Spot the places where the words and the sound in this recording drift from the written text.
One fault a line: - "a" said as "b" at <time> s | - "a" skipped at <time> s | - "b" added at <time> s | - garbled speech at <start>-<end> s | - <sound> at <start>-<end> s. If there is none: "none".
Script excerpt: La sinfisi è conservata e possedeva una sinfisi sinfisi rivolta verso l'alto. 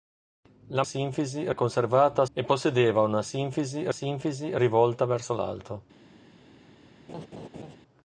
- laugh at 7.1-7.8 s